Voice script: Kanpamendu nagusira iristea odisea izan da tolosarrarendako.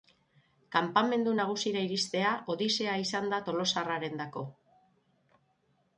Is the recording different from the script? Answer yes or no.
no